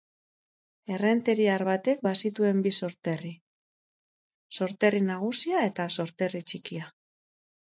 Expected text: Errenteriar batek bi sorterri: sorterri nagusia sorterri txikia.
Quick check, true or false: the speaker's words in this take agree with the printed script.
false